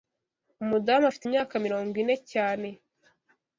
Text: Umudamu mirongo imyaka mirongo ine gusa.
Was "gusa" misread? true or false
true